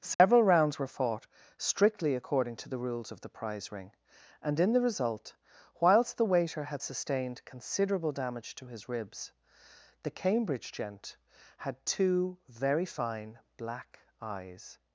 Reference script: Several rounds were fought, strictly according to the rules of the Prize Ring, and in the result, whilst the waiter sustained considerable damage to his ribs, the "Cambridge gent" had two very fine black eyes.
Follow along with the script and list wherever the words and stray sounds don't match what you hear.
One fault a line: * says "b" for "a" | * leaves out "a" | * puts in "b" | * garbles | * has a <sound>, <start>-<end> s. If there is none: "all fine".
* has a dropout, 0.1-0.2 s
* puts in "had"